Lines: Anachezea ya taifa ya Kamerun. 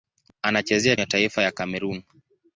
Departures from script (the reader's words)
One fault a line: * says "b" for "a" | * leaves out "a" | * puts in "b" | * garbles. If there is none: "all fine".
all fine